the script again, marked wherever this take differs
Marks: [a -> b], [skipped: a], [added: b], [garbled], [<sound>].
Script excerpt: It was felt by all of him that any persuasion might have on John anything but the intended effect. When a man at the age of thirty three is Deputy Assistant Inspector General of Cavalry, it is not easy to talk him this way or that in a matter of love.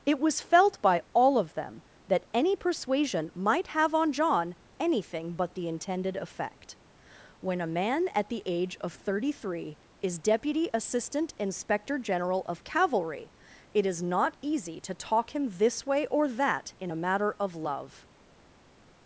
It was felt by all of [him -> them] that any persuasion might have on John anything but the intended effect. When a man at the age of thirty three is Deputy Assistant Inspector General of Cavalry, it is not easy to talk him this way or that in a matter of love.